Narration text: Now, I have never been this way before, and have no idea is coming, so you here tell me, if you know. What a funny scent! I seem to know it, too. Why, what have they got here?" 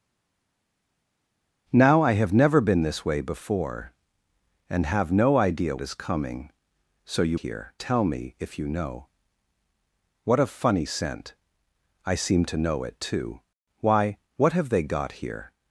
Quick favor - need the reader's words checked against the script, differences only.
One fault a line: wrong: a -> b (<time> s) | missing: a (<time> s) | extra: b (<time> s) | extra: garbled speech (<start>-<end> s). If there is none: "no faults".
no faults